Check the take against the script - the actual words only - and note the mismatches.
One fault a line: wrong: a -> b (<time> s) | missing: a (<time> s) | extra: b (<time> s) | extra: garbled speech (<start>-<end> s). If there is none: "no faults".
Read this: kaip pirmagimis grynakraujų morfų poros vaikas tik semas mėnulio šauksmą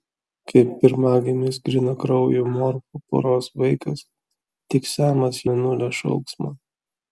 no faults